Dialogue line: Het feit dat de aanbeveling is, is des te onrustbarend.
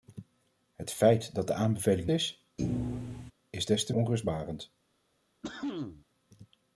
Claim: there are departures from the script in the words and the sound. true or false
true